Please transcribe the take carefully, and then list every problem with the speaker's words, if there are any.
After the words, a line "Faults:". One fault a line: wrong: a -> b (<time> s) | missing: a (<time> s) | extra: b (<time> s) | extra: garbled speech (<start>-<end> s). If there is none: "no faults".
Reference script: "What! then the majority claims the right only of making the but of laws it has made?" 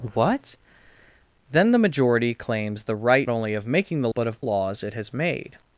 "What! then the majority claims the right only of making the but of laws it has made?"
Faults:
no faults